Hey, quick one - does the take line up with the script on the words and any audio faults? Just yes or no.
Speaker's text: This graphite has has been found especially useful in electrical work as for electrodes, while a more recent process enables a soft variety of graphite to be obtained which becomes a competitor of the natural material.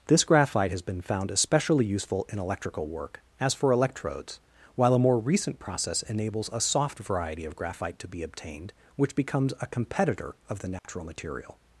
no